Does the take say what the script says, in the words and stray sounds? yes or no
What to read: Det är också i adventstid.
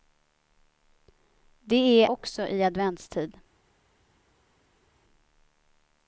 yes